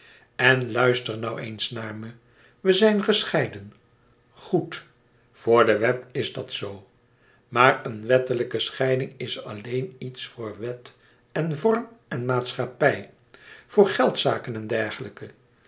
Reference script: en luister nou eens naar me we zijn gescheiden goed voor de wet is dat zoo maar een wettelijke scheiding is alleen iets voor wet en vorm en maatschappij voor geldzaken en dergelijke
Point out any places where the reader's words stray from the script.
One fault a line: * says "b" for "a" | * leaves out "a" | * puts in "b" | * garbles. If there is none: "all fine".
all fine